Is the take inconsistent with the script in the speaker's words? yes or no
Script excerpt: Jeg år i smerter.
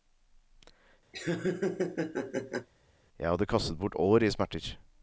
yes